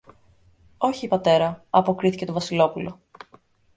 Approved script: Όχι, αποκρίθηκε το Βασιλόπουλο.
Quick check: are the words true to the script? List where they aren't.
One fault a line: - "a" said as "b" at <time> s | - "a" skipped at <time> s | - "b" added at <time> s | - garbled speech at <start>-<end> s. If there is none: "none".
- "πατέρα" added at 1.1 s